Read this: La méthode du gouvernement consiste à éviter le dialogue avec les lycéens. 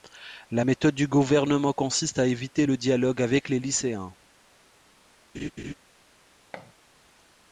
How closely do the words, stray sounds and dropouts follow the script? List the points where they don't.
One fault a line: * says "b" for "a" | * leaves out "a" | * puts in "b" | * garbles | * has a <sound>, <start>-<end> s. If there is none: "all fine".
* has a laugh, 5.3-5.7 s
* has a thud, 6.5-6.7 s